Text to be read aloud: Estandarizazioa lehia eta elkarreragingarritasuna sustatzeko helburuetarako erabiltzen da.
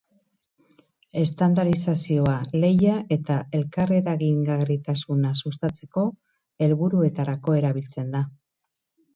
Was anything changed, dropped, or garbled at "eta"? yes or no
no